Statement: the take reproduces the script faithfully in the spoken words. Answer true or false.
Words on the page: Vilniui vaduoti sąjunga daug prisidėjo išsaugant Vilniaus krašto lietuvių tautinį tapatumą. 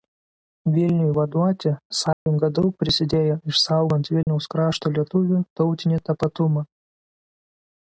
true